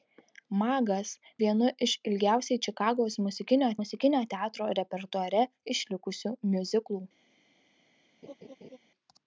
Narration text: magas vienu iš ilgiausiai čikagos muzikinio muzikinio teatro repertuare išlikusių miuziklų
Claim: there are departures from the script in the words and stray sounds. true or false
true